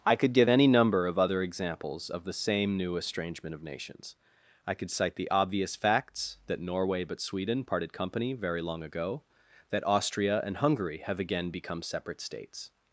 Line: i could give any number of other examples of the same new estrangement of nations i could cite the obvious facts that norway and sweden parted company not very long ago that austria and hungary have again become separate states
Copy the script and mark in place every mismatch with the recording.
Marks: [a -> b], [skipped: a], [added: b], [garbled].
i could give any number of other examples of the same new estrangement of nations i could cite the obvious facts that norway [and -> but] sweden parted company [skipped: not] very long ago that austria and hungary have again become separate states